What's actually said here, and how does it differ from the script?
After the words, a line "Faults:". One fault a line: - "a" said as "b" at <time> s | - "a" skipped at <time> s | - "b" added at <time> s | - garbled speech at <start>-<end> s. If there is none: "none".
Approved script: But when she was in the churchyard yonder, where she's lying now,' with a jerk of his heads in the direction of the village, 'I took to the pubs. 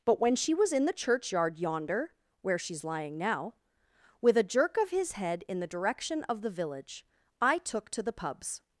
But when she was in the churchyard yonder, where she's lying now,' with a jerk of his head in the direction of the village, 'I took to the pubs.
Faults:
- "heads" said as "head" at 5.1 s